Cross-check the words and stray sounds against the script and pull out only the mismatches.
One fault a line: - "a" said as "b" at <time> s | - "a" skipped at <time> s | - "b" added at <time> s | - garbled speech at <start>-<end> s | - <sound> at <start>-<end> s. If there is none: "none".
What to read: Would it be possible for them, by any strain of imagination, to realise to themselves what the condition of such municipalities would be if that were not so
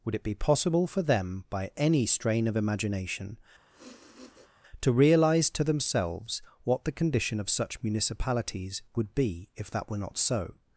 - sniff at 3.7-4.5 s